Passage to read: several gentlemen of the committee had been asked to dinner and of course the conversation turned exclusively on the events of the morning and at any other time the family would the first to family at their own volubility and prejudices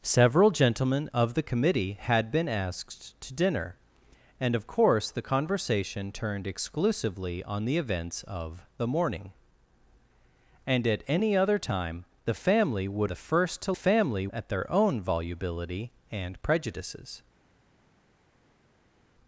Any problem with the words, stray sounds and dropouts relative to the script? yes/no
no